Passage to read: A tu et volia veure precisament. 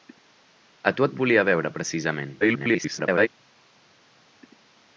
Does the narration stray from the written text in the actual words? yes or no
yes